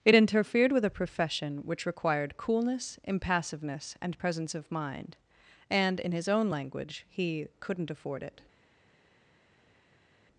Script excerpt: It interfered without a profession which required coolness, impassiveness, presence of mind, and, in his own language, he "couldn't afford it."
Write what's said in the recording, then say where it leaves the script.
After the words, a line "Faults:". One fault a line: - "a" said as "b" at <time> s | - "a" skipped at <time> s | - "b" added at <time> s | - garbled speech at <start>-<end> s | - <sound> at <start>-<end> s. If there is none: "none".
It interfered with a profession which required coolness, impassiveness, and presence of mind, and, in his own language, he "couldn't afford it."
Faults:
- "without" said as "with" at 0.7 s
- "and" added at 4.0 s